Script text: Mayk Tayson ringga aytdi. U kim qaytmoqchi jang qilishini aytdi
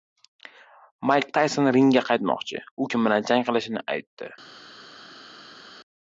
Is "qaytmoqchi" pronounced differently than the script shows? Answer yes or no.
yes